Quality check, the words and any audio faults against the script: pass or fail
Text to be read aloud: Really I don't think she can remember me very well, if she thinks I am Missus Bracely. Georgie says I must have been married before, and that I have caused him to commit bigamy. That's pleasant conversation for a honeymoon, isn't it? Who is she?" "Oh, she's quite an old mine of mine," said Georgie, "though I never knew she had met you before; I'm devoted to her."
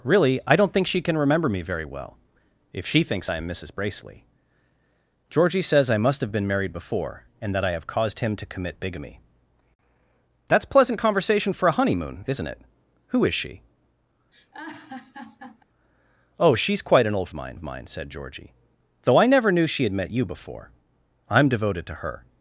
fail